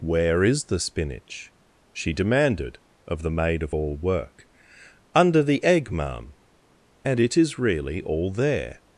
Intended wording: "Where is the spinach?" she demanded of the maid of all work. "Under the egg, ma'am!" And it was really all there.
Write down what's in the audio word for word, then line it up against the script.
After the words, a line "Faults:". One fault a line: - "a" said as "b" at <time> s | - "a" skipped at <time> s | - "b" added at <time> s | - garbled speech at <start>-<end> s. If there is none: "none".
"Where is the spinach?" she demanded of the maid of all work. "Under the egg, ma'am!" And it is really all there.
Faults:
- "was" said as "is" at 7.3 s